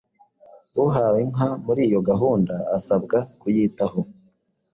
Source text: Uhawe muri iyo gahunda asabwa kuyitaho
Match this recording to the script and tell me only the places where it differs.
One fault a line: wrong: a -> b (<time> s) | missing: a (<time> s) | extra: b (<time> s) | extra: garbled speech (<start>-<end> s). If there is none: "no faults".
extra: inka (1.2 s)